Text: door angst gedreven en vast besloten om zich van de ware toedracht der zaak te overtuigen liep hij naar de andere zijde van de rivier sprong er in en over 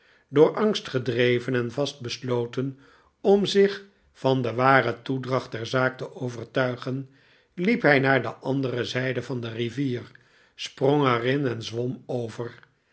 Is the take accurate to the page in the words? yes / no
no